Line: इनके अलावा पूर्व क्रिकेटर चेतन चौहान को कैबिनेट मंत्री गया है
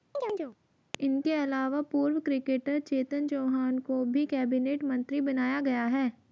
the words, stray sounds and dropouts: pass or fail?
fail